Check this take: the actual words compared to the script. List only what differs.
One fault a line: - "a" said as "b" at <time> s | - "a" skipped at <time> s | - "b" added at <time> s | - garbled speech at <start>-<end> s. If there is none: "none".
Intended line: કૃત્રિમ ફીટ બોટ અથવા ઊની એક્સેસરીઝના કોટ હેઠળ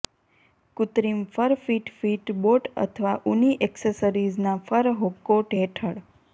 - "ફર ફિટ" added at 1.3 s
- "ફર" added at 4.7 s